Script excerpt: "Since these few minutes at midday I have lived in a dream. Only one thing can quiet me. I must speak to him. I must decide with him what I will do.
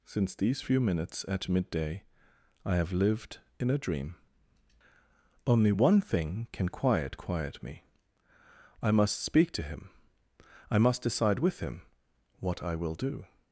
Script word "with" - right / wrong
right